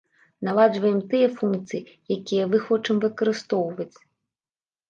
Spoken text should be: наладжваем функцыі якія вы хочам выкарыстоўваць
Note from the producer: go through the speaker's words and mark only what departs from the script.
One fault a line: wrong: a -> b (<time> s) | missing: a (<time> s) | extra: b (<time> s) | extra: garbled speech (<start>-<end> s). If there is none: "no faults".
extra: тыя (1.1 s)